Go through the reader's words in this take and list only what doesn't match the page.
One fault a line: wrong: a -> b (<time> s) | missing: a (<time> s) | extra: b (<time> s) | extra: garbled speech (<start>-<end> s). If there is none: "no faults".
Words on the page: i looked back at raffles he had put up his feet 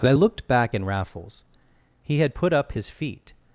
wrong: at -> in (0.7 s)